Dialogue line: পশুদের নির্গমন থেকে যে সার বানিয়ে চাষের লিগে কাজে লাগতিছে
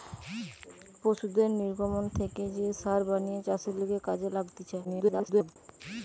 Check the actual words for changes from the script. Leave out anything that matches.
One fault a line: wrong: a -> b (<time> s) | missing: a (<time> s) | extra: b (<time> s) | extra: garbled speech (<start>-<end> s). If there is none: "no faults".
extra: garbled speech (4.8-5.6 s)